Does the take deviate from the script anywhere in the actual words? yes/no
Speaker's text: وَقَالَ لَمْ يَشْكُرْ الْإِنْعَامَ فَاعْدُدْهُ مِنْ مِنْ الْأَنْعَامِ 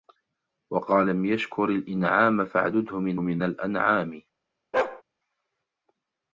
no